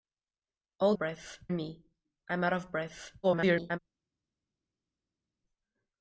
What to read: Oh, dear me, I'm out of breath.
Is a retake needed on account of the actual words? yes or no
yes